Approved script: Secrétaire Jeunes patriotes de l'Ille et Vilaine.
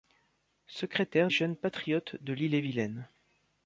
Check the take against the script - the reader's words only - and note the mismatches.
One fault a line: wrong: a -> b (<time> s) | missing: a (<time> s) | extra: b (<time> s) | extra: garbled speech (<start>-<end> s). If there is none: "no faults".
no faults